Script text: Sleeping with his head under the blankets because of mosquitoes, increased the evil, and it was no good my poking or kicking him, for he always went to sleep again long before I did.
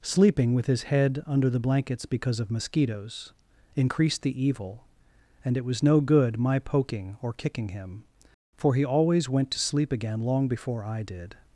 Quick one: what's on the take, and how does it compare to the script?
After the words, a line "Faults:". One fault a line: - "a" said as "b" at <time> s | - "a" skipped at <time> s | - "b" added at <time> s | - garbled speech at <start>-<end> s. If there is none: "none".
Sleeping with his head under the blankets because of mosquitoes, increased the evil, and it was no good my poking or kicking him, for he always went to sleep again long before I did.
Faults:
none